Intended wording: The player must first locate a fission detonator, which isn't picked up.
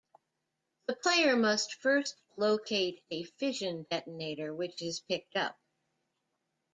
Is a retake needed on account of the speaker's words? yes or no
yes